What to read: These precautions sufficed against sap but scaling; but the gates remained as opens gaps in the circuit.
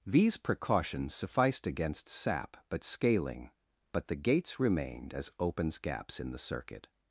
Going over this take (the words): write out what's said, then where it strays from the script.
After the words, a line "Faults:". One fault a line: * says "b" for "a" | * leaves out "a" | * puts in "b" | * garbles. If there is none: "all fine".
These precautions sufficed against sap but scaling; but the gates remained as opens gaps in the circuit.
Faults:
all fine